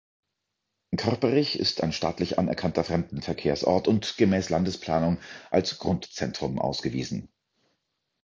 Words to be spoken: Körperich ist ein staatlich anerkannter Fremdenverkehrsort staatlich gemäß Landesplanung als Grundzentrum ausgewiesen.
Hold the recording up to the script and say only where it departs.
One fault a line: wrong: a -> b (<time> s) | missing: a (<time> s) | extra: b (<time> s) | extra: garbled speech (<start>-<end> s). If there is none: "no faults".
wrong: staatlich -> und (3.9 s)